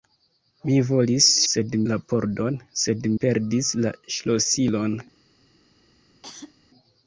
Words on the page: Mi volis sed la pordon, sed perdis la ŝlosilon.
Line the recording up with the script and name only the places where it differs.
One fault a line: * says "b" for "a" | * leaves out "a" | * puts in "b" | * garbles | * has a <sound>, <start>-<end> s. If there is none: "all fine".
* has a cough, 6.2-6.5 s